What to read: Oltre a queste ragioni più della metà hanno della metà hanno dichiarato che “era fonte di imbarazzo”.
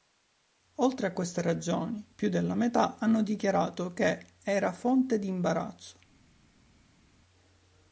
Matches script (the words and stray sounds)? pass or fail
fail